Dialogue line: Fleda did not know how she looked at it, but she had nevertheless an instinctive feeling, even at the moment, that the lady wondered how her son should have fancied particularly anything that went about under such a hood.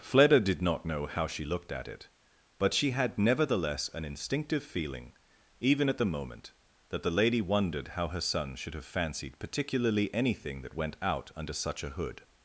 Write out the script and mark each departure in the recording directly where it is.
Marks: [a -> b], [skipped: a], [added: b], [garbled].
Fleda did not know how she looked at it, but she had nevertheless an instinctive feeling, even at the moment, that the lady wondered how her son should have fancied particularly anything that went [about -> out] under such a hood.